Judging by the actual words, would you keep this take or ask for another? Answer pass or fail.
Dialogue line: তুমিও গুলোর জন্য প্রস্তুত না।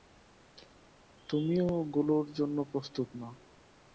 pass